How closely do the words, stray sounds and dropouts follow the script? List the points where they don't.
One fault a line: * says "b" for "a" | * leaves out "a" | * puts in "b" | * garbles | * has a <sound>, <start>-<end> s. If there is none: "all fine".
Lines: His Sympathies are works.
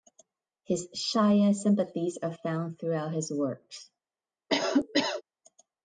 * puts in "Shia"
* puts in "found throughout his"
* has a cough, 4.5-5.2 s